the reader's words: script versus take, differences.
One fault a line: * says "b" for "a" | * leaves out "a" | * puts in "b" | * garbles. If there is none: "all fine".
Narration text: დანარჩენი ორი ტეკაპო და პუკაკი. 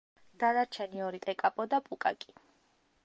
all fine